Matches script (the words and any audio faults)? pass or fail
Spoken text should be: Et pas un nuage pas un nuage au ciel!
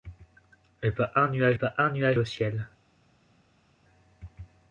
pass